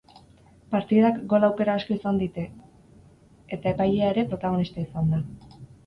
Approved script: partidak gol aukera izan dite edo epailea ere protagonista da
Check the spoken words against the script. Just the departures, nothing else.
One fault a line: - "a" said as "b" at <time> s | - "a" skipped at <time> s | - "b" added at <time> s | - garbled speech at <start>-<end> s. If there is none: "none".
- "asko" added at 1.8 s
- "edo" said as "eta" at 3.6 s
- "izan" added at 4.9 s